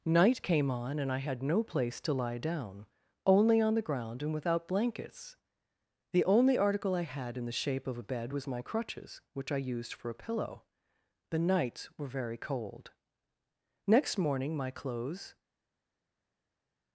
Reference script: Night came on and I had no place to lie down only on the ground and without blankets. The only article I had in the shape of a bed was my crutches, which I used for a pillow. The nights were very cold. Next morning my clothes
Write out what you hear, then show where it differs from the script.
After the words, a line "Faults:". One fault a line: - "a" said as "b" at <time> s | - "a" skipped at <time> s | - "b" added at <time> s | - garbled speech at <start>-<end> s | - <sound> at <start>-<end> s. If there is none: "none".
Night came on and I had no place to lie down only on the ground and without blankets. The only article I had in the shape of a bed was my crutches, which I used for a pillow. The nights were very cold. Next morning my clothes
Faults:
none